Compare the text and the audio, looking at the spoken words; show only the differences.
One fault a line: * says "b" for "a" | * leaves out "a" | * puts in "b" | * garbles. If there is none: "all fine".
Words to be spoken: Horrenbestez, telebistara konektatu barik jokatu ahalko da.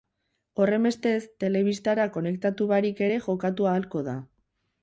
* puts in "ere"